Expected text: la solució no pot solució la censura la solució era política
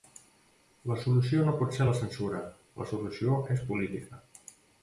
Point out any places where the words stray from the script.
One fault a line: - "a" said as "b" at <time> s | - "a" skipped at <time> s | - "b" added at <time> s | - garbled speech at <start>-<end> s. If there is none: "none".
- "solució" said as "ser" at 1.8 s
- "era" said as "és" at 3.6 s